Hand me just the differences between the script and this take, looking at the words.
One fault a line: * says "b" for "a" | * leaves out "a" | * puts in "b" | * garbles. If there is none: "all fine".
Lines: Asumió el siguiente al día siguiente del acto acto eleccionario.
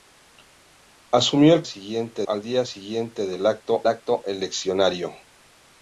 all fine